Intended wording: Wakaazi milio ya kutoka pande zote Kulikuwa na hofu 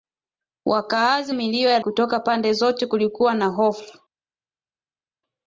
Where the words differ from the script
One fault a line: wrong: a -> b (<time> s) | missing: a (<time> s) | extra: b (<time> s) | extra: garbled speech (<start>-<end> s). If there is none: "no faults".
no faults